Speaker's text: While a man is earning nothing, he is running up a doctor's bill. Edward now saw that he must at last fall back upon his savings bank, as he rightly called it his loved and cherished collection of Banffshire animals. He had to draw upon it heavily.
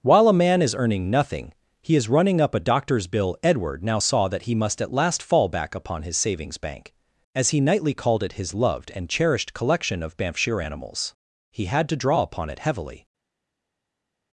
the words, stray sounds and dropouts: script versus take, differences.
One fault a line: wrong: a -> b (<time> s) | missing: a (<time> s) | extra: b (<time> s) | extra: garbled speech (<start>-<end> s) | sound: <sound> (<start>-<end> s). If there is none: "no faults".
wrong: rightly -> nightly (7.6 s)